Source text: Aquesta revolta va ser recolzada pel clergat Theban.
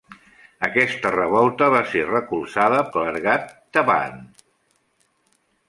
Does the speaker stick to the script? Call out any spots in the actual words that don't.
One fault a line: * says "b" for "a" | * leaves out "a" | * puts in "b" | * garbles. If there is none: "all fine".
* leaves out "pel"